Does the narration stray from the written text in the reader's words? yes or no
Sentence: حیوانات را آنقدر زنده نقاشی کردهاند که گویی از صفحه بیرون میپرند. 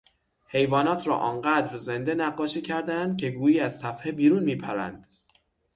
no